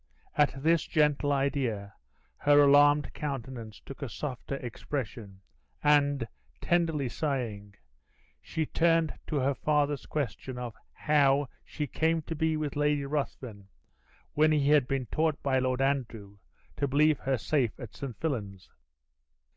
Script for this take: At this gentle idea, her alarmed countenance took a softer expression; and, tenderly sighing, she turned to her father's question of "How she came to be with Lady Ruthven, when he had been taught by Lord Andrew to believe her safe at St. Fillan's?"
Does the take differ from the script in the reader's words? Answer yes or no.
no